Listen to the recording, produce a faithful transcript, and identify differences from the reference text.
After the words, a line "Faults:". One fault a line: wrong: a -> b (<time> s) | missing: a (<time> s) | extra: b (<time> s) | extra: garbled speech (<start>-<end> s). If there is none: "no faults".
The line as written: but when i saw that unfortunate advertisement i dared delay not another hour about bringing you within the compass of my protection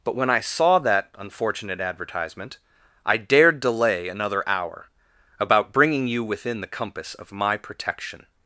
but when i saw that unfortunate advertisement i dared delay another hour about bringing you within the compass of my protection
Faults:
missing: not (4.1 s)